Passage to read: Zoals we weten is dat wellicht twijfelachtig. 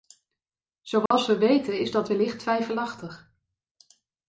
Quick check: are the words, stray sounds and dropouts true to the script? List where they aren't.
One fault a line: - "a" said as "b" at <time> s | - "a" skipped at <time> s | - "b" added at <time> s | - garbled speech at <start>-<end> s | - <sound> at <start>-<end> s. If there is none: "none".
- dropout at 1.1-1.1 s